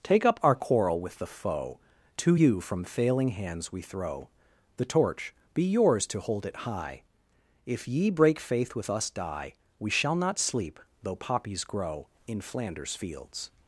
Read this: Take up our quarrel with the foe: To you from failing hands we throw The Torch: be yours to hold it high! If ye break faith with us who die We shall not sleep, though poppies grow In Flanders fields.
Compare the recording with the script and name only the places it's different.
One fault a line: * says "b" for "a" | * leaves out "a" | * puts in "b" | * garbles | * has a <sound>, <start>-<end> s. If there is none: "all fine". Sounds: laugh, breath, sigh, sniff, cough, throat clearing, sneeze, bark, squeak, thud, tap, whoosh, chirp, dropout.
* leaves out "who"